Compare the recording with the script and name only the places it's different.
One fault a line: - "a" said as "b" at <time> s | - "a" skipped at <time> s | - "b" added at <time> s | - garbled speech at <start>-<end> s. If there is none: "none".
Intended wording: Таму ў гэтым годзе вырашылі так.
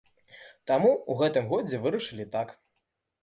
none